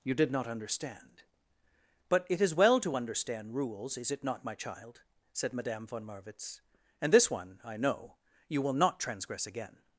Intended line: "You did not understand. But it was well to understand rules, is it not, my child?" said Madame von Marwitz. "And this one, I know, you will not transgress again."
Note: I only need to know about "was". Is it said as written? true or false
false